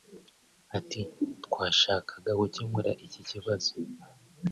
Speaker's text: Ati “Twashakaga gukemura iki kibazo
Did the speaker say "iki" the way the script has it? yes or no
yes